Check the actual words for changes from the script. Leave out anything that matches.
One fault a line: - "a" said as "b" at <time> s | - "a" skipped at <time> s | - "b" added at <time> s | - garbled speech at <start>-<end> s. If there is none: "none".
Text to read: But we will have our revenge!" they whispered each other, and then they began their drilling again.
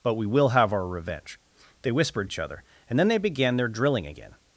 none